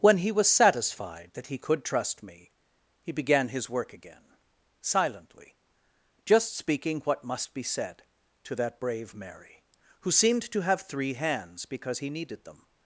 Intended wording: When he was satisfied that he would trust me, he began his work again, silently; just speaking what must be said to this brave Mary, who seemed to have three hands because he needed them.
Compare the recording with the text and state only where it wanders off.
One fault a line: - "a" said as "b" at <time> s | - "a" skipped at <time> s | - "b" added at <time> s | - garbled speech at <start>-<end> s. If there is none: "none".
- "would" said as "could" at 1.6 s
- "this" said as "that" at 8.6 s